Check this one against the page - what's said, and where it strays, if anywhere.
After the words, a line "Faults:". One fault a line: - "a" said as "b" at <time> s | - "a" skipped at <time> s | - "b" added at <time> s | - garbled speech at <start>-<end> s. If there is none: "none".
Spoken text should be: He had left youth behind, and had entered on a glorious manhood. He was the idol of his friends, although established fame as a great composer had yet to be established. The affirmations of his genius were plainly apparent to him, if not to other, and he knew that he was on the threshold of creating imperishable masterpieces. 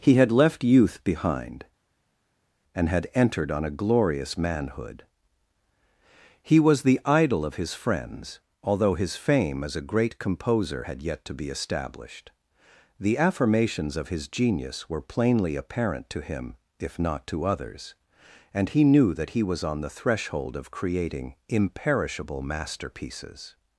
He had left youth behind, and had entered on a glorious manhood. He was the idol of his friends, although his fame as a great composer had yet to be established. The affirmations of his genius were plainly apparent to him, if not to others, and he knew that he was on the threshold of creating imperishable masterpieces.
Faults:
- "established" said as "his" at 8.9 s
- "other" said as "others" at 17.4 s